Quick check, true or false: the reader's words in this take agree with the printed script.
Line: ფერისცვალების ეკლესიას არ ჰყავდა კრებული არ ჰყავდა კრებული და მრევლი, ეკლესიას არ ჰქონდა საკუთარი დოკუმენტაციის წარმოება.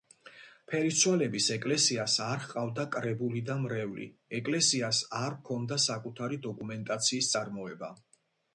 false